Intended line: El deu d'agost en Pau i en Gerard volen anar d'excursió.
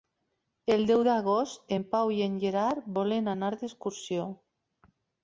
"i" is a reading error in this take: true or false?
false